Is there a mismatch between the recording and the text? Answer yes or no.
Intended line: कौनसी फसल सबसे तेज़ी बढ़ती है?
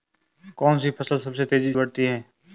no